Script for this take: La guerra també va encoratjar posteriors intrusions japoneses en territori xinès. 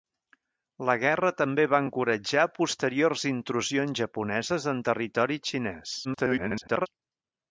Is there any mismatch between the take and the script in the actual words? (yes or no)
yes